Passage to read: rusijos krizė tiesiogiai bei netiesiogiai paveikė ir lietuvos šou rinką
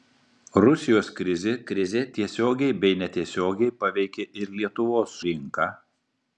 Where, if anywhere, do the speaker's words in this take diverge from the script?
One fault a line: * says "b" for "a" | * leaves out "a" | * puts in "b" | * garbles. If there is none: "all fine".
* puts in "krizė"
* leaves out "šou"